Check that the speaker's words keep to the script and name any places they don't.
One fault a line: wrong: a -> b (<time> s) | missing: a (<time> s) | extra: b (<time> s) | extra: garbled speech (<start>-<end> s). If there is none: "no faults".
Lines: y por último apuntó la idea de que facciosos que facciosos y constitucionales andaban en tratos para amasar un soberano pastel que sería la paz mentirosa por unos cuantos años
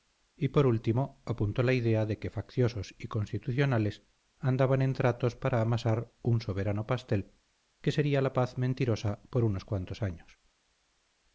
missing: que facciosos (3.0 s)